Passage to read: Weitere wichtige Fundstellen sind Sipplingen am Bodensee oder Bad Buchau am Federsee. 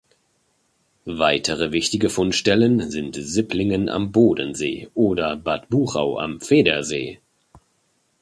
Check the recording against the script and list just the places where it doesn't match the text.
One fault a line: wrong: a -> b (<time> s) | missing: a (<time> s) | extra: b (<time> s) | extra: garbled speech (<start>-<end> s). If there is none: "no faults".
no faults